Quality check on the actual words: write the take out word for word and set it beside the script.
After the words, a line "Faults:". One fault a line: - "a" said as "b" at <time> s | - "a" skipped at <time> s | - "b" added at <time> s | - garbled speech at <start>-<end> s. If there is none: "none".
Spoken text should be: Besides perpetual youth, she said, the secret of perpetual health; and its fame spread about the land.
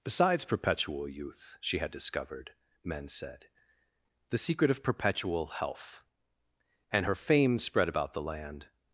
Besides perpetual youth, she had discovered, men said, the secret of perpetual health; and her fame spread about the land.
Faults:
- "had discovered men" added at 1.8 s
- "its" said as "her" at 7.0 s